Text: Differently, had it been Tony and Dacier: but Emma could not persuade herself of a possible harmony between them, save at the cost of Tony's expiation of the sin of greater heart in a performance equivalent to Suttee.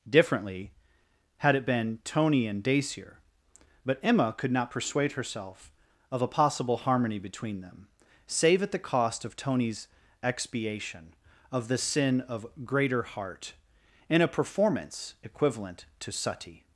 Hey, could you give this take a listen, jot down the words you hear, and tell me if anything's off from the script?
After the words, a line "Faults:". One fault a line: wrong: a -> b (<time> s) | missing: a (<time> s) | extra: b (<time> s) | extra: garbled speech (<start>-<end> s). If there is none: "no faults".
Differently, had it been Tony and Dacier: but Emma could not persuade herself of a possible harmony between them, save at the cost of Tony's expiation of the sin of greater heart in a performance equivalent to Suttee.
Faults:
no faults